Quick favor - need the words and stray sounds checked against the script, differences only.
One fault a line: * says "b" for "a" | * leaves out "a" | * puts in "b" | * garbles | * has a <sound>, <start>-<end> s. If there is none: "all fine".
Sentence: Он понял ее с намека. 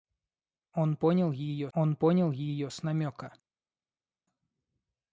* puts in "он понял ее"